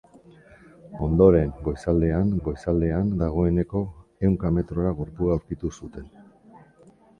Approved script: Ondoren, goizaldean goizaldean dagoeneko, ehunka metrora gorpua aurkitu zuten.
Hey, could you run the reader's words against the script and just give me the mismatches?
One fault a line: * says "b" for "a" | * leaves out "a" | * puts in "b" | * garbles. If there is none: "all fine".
all fine